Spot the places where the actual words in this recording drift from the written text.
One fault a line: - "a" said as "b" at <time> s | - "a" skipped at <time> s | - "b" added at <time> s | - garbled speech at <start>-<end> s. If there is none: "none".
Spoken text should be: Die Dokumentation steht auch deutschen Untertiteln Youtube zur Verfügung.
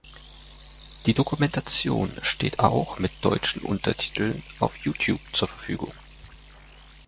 - "mit" added at 3.0 s
- "auf" added at 4.6 s